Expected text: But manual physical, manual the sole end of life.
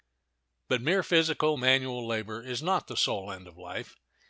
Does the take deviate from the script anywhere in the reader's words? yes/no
yes